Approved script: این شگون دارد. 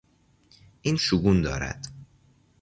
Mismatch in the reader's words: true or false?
false